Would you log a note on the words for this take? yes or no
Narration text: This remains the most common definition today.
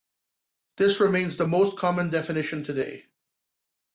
no